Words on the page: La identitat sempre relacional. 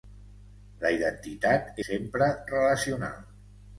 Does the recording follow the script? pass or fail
pass